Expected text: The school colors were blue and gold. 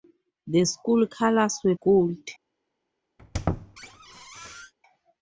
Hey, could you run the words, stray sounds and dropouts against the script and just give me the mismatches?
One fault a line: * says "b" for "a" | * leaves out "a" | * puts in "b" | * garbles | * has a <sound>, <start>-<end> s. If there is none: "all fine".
* leaves out "blue and"
* has a squeak, 3.2-4.7 s